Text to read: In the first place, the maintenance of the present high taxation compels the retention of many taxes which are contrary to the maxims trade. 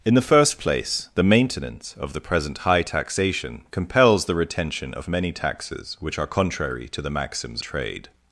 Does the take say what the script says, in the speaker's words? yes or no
yes